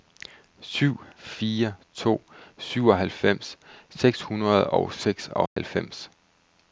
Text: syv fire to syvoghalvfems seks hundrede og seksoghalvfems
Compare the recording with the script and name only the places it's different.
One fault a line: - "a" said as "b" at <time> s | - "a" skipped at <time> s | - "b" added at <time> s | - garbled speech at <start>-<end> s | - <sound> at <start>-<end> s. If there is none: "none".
- dropout at 5.5-5.6 s